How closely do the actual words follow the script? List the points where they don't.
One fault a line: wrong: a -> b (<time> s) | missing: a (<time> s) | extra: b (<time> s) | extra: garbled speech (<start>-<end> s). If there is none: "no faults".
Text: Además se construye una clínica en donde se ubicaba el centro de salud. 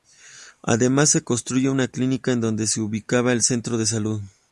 no faults